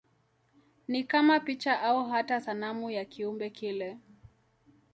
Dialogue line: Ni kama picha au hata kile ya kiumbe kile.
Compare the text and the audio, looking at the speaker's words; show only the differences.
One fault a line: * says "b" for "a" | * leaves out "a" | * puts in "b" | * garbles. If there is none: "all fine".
* says "sanamu" for "kile"